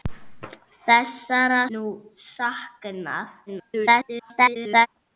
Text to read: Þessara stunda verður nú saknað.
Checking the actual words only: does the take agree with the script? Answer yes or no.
no